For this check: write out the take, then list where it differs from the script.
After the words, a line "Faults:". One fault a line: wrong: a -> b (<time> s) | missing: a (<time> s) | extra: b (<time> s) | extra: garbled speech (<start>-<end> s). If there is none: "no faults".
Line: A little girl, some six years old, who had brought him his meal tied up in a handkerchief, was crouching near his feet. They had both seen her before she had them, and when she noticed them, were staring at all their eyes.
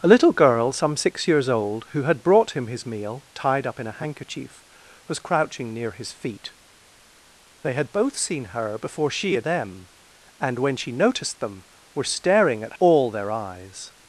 A little girl, some six years old, who had brought him his meal tied up in a handkerchief, was crouching near his feet. They had both seen her before she had them, and when she noticed them, were staring at all their eyes.
Faults:
no faults